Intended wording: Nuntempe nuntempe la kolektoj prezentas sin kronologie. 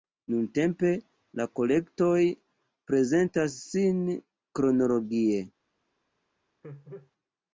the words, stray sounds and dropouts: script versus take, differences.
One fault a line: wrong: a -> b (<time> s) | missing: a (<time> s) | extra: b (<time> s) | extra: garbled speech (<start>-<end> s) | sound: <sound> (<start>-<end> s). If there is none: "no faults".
missing: nuntempe (0.9 s)
sound: laugh (6.6-7.1 s)